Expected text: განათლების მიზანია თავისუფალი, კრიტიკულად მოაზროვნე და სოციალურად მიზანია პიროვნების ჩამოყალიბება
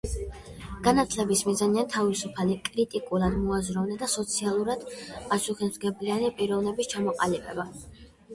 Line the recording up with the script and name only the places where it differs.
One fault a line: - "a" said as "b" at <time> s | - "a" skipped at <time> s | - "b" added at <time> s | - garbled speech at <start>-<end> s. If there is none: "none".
- "მიზანია" said as "პასუხისმგებლიანი" at 5.3 s